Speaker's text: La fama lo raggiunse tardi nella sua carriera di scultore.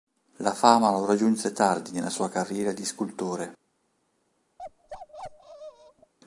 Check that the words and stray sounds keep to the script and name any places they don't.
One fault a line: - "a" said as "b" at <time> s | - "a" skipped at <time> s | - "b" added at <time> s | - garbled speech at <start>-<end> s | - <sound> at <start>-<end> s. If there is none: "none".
- bark at 4.6-6.1 s